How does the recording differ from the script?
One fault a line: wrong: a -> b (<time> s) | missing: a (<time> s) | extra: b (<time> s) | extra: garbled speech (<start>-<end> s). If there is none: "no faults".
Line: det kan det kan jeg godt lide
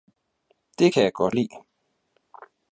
missing: det kan (1.0 s)